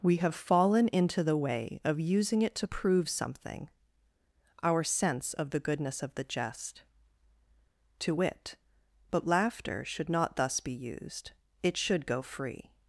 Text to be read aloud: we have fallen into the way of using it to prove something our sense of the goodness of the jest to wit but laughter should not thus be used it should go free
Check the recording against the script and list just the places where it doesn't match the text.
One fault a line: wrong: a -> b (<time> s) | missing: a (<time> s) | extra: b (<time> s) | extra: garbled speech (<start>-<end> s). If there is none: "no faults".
no faults